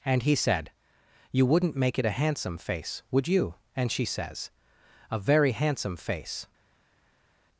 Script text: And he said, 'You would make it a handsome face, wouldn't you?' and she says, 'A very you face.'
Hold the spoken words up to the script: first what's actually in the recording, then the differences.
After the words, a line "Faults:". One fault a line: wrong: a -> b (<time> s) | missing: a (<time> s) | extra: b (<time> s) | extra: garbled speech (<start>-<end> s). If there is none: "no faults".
And he said, 'You wouldn't make it a handsome face, would you?' and she says, 'A very handsome face.'
Faults:
wrong: would -> wouldn't (1.4 s)
wrong: wouldn't -> would (3.1 s)
wrong: you -> handsome (5.5 s)